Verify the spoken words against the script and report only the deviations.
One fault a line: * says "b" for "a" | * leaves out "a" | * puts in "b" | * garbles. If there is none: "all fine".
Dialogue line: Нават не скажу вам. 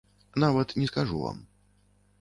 all fine